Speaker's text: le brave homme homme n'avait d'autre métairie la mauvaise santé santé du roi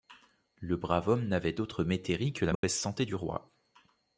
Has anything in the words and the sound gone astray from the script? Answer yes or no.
yes